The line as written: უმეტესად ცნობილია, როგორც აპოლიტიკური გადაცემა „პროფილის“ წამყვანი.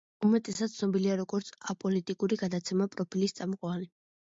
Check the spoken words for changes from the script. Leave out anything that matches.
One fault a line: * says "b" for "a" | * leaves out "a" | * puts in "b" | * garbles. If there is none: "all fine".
all fine